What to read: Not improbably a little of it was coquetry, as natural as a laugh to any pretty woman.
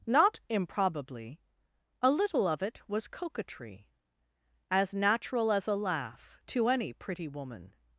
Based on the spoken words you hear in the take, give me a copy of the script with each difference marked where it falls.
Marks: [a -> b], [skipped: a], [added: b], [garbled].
Not improbably a little of it was coquetry, as natural as a laugh to any pretty woman.